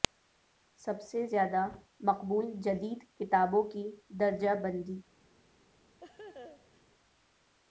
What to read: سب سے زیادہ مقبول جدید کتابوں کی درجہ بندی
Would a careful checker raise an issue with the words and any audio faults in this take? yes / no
yes